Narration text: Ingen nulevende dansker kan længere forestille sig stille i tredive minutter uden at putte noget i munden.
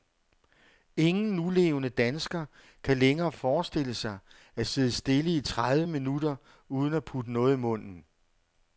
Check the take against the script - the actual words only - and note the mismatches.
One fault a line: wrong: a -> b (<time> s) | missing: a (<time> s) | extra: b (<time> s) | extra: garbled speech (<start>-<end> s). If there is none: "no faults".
extra: at sidde (4.5 s)